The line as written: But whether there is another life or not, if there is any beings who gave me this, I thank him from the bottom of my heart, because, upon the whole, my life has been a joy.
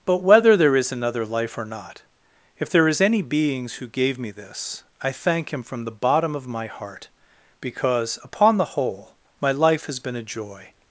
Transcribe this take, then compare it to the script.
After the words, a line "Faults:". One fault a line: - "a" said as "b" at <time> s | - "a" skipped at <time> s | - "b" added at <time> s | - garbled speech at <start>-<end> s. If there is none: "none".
But whether there is another life or not, if there is any beings who gave me this, I thank him from the bottom of my heart, because, upon the whole, my life has been a joy.
Faults:
none